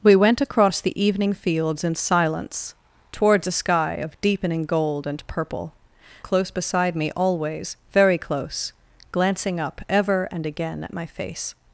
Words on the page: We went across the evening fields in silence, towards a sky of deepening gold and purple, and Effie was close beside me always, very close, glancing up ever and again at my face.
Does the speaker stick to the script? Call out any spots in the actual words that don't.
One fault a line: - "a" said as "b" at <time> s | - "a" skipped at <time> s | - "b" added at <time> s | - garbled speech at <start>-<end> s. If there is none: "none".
- "and Effie was" skipped at 5.7 s